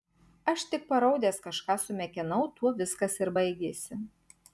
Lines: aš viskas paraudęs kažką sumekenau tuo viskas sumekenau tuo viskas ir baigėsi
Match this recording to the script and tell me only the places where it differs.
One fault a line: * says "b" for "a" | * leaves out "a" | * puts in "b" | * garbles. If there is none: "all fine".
* says "tik" for "viskas"
* leaves out "sumekenau tuo viskas"